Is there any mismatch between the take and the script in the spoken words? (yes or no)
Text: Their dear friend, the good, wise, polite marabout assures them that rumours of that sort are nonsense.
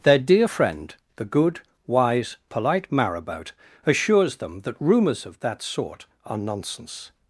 no